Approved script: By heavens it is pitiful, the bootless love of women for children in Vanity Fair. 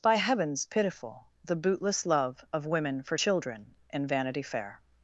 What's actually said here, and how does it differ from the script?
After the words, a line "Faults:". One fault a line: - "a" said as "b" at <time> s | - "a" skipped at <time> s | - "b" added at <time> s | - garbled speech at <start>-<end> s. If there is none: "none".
By heavens pitiful, the bootless love of women for children in Vanity Fair.
Faults:
- "it is" skipped at 0.7 s